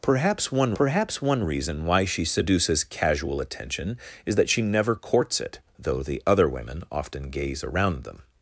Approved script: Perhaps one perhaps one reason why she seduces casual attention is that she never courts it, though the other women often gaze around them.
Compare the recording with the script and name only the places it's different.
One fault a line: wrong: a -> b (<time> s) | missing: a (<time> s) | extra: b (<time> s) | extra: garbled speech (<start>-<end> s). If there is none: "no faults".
no faults